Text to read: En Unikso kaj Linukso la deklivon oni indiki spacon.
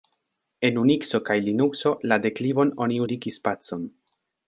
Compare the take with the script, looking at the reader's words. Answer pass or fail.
pass